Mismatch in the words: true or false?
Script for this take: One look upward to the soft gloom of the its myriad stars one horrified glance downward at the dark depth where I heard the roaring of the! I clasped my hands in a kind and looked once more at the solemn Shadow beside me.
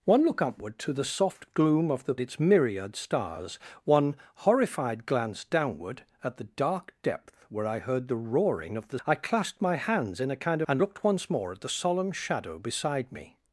false